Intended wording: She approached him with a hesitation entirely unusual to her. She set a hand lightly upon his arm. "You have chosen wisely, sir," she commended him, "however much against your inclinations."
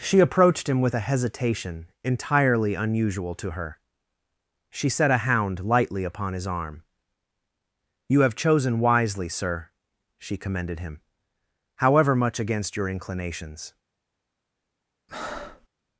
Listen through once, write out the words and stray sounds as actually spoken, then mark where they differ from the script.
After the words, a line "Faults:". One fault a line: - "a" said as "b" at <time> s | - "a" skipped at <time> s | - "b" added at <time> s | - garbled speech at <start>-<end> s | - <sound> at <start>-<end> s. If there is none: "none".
She approached him with a hesitation entirely unusual to her. She set a hound lightly upon his arm. "You have chosen wisely, sir," she commended him, "however much against your inclinations."
Faults:
- "hand" said as "hound" at 5.3 s
- breath at 15.1-15.7 s